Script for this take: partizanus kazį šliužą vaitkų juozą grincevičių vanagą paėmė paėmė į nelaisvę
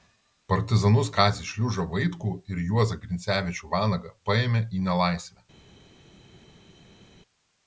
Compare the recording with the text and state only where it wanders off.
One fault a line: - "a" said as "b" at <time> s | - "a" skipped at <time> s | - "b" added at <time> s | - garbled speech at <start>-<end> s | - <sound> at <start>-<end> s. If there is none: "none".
- "ir" added at 2.5 s
- "paėmė" skipped at 4.6 s